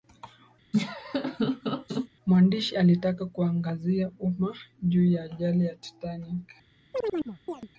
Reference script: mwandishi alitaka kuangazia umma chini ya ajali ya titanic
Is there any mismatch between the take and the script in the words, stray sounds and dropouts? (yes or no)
yes